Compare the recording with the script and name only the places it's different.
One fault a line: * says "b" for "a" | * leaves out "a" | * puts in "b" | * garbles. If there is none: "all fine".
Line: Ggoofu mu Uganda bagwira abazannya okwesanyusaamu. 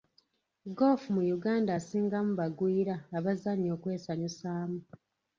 * puts in "asingamu"